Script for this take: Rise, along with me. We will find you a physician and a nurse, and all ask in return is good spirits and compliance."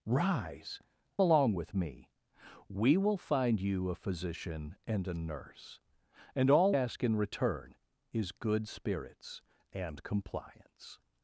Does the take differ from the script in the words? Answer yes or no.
no